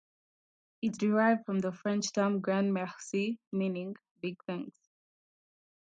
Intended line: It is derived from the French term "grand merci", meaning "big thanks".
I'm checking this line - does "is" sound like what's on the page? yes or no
no